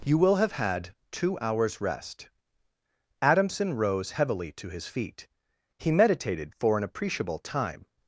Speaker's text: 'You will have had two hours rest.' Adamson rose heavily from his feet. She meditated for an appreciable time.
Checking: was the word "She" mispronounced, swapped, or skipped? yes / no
yes